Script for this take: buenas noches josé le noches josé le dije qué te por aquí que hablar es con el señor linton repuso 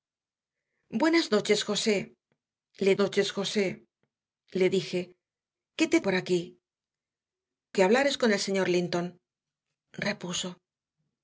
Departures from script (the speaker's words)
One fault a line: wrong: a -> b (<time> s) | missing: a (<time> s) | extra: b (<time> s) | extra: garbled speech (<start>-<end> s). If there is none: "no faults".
no faults